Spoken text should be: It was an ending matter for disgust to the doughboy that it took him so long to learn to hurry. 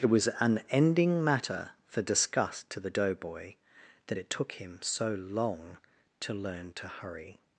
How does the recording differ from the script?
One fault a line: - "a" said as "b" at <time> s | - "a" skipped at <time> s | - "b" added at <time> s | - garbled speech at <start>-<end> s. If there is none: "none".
none